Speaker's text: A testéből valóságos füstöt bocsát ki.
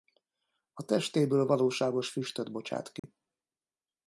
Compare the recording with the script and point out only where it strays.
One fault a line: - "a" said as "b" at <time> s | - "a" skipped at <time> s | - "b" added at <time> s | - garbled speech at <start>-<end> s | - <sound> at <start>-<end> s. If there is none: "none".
- dropout at 3.0-3.0 s